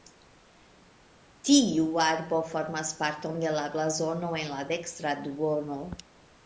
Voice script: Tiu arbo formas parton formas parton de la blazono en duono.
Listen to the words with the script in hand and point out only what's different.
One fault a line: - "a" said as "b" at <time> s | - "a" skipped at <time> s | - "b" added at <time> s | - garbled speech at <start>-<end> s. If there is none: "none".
- "formas parton" skipped at 3.4 s
- "la dekstra" added at 4.6 s